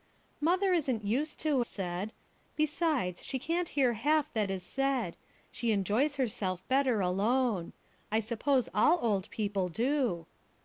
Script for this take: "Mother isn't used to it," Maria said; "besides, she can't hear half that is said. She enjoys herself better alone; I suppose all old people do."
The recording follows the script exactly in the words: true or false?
false